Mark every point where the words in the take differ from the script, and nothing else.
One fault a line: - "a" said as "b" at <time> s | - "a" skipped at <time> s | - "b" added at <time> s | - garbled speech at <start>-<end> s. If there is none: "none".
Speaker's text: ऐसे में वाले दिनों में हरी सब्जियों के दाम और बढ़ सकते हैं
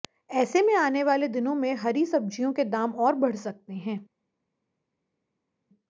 - "आने" added at 0.8 s